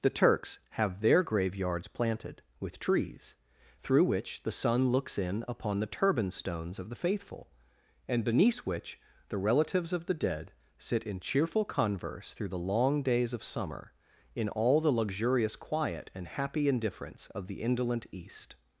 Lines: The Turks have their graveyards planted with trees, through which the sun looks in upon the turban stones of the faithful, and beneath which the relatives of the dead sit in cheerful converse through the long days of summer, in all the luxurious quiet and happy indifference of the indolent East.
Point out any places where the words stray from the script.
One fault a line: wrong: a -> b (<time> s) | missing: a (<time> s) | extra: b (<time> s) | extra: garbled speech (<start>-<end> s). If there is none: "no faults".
no faults